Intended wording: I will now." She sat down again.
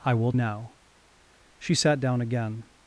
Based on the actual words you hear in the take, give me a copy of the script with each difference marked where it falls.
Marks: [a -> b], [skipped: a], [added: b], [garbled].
I will now." She sat down again.